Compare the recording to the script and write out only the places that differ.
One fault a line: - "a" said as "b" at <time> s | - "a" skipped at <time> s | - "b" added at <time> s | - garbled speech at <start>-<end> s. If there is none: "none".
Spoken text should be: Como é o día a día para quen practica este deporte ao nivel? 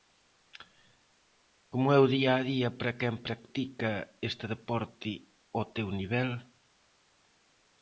- "teu" added at 5.8 s